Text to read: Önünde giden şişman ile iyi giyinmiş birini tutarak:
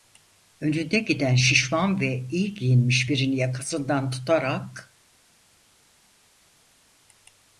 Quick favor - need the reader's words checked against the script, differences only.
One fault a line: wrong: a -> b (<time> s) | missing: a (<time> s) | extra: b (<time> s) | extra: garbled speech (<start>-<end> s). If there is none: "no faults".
wrong: ile -> ve (2.0 s)
extra: yakasından (3.4 s)